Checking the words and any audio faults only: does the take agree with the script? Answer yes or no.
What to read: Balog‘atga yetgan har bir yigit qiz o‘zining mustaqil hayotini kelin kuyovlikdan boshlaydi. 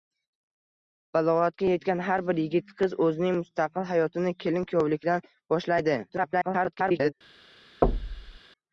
no